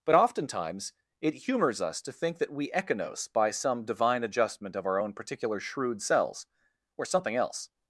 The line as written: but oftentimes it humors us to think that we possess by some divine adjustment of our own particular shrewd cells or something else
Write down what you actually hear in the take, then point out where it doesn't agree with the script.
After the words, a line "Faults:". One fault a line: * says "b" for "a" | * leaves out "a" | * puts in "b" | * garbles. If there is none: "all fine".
but oftentimes it humors us to think that we echinos by some divine adjustment of our own particular shrewd cells or something else
Faults:
* says "echinos" for "possess"